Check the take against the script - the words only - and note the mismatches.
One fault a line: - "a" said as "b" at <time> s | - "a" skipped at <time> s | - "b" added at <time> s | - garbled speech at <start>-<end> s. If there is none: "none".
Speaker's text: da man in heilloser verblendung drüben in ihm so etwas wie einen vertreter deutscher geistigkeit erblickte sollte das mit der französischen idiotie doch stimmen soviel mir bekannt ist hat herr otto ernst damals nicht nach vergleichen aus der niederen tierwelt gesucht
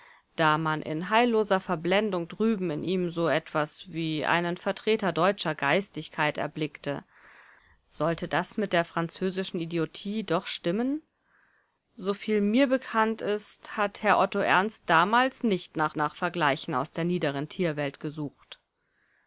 - "nach" added at 16.0 s